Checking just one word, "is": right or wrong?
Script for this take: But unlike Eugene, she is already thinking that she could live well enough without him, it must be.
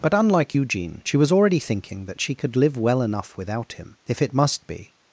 wrong